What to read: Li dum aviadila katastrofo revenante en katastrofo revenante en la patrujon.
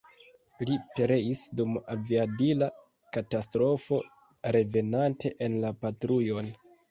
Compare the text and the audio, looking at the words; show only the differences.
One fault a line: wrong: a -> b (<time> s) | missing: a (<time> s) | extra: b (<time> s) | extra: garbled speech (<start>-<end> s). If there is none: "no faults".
extra: pereis (0.9 s)
missing: katastrofo revenante en (5.6 s)